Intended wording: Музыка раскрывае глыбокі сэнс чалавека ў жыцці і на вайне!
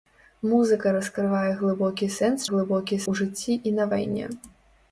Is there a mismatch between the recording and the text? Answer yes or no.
yes